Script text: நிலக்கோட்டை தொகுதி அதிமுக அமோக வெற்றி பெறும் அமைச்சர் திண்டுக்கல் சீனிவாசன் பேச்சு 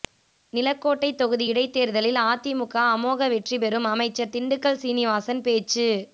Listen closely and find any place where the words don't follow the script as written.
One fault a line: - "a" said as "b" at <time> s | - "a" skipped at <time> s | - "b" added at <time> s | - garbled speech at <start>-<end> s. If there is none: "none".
- "இடைத்தேர்தலில்" added at 1.5 s